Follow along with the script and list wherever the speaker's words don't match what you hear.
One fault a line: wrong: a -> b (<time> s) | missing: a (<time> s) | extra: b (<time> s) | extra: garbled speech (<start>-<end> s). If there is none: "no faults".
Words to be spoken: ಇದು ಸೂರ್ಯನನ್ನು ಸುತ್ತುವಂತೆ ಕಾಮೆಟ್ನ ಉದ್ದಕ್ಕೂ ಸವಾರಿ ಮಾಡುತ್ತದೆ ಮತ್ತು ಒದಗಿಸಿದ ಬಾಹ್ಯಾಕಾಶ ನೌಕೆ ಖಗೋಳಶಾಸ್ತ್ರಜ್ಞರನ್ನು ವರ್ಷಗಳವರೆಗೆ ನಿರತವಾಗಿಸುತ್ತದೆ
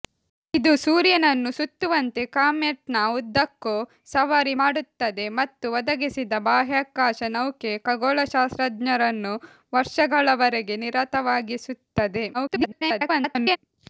extra: garbled speech (12.3-13.6 s)